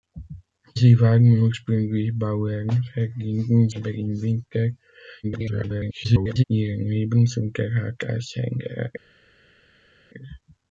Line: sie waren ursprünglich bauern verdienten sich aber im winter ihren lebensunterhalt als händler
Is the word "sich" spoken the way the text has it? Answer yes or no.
no